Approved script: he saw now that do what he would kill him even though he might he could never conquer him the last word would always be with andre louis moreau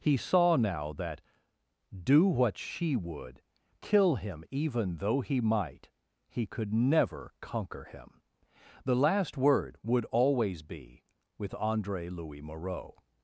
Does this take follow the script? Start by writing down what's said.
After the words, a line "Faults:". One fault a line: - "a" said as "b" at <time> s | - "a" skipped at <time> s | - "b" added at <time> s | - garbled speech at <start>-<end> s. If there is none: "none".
he saw now that do what she would kill him even though he might he could never conquer him the last word would always be with andre louis moreau
Faults:
- "he" said as "she" at 2.6 s